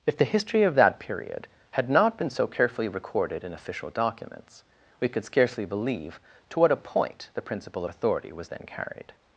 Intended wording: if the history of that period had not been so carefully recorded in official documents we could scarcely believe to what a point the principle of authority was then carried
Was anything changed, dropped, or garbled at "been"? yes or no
no